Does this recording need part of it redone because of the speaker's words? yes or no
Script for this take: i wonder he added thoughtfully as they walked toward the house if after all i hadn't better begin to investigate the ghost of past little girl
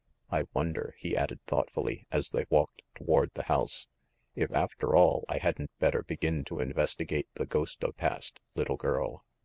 no